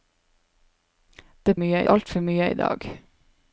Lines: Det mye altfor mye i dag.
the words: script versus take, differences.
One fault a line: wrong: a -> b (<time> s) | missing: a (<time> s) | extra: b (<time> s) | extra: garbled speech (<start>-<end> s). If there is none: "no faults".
no faults